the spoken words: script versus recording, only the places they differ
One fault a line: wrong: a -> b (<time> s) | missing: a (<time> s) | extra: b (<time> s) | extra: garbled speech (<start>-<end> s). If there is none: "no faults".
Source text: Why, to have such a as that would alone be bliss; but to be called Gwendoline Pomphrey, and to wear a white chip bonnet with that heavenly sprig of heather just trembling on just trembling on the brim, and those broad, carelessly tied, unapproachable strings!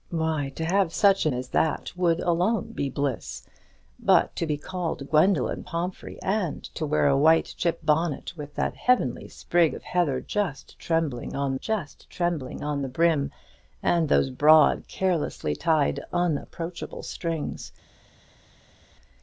no faults